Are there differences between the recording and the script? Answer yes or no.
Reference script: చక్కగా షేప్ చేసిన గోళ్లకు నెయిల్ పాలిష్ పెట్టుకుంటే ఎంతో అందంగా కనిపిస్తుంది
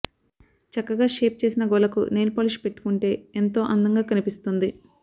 no